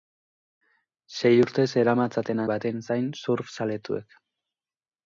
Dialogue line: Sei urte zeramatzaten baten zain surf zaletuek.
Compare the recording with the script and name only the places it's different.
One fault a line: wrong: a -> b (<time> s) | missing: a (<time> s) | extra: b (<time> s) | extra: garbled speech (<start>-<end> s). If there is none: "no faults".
no faults